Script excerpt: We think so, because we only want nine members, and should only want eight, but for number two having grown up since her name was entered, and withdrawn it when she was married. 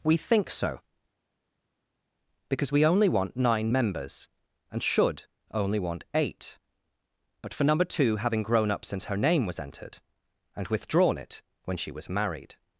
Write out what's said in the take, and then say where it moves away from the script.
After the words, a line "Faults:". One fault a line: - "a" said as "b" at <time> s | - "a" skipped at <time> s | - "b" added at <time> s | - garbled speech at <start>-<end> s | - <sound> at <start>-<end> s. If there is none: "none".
We think so, because we only want nine members, and should only want eight, but for number two having grown up since her name was entered, and withdrawn it when she was married.
Faults:
none